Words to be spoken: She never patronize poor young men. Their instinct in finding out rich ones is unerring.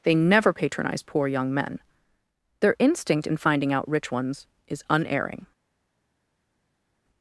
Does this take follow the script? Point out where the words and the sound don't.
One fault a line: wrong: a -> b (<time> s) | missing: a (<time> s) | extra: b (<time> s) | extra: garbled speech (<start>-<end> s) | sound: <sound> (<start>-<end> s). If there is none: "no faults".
wrong: She -> They (0.0 s)